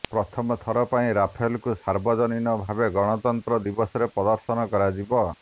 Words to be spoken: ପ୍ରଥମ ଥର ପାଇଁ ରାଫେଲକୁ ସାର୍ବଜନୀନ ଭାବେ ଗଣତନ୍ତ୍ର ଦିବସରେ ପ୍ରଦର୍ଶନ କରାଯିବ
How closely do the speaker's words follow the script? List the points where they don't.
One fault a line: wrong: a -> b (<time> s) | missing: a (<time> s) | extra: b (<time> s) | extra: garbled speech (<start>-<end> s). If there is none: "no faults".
no faults